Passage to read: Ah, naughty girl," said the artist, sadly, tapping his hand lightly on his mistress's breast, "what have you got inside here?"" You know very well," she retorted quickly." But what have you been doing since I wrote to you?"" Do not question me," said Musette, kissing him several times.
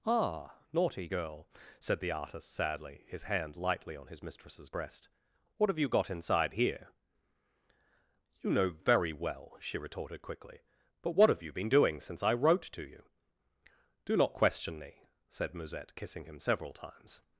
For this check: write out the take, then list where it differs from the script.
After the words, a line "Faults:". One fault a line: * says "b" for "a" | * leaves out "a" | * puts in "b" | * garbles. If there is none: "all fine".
Ah, naughty girl," said the artist, sadly, his hand lightly on his mistress's breast, "what have you got inside here?"" You know very well," she retorted quickly." But what have you been doing since I wrote to you?"" Do not question me," said Musette, kissing him several times.
Faults:
* leaves out "tapping"